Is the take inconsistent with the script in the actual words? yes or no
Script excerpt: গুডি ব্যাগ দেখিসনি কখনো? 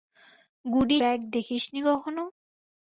no